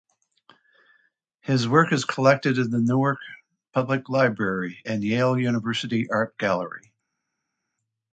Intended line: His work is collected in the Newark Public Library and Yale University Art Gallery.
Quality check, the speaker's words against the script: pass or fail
pass